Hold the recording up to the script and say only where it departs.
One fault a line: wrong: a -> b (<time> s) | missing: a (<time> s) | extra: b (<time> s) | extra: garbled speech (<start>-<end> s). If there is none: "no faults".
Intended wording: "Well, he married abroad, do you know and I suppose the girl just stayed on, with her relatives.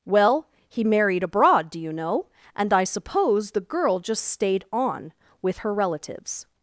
no faults